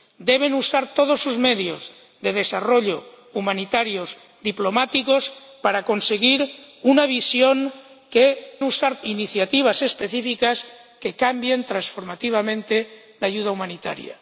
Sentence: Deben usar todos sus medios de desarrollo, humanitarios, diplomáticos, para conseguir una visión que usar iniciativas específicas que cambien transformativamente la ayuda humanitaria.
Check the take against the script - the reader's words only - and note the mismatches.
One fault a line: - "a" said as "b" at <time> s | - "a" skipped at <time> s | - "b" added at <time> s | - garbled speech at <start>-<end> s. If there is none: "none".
none